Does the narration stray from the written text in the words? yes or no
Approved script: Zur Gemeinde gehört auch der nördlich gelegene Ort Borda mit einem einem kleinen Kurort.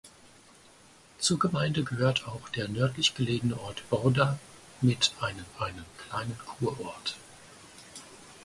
no